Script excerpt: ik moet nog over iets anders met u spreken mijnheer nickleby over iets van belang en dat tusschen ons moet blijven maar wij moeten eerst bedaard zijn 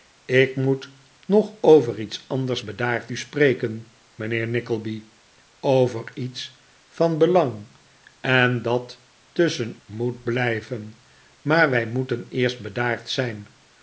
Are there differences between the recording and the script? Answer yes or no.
yes